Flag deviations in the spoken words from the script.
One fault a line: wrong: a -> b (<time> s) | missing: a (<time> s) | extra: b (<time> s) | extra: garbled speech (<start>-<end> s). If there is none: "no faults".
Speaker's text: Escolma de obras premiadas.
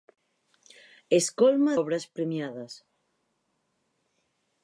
missing: de (1.8 s)